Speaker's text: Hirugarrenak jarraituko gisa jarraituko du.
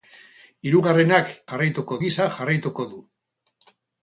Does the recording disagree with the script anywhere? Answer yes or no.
no